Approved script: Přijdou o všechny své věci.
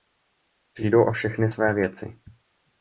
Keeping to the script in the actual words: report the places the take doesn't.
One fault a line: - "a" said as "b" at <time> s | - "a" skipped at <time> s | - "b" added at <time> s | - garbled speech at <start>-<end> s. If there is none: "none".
none